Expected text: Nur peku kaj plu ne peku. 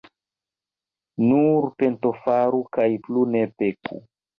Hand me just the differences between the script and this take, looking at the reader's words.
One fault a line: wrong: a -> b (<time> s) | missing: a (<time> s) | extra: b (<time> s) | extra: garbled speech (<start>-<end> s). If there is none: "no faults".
wrong: peku -> pentofaru (1.8 s)